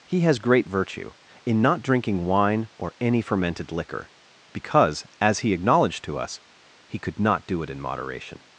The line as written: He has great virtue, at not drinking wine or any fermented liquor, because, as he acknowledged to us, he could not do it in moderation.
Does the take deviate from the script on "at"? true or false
true